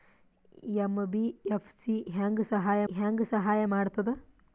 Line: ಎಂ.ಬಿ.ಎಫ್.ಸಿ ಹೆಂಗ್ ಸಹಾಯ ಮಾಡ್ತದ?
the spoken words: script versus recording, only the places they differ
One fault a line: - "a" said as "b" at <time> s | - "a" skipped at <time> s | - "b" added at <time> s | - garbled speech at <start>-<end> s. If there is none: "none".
- "ಹೆಂಗ್ ಸಹಾಯ" added at 2.9 s